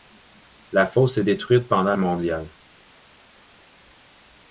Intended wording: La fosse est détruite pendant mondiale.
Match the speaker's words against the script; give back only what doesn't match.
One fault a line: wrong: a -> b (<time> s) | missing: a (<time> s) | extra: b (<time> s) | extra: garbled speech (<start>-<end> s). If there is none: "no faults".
no faults